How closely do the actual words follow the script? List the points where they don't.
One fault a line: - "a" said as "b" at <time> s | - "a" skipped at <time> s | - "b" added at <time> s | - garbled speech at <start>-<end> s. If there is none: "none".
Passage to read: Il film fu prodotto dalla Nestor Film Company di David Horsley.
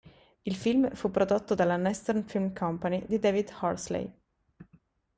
none